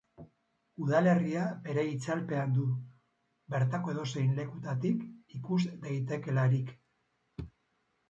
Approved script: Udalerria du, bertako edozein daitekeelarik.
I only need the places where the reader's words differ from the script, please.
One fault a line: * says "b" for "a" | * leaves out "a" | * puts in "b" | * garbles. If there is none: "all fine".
* puts in "bere itzalpean"
* puts in "lekutatik ikus"